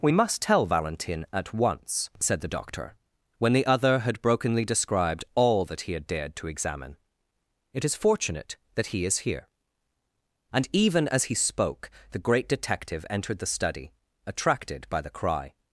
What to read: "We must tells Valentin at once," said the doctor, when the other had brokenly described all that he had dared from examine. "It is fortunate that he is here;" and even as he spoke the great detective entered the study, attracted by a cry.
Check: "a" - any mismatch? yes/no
yes